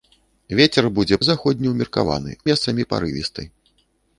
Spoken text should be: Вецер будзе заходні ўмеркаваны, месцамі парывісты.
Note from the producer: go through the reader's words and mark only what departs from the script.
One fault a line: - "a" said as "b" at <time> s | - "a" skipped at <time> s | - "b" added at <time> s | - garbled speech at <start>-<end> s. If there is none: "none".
none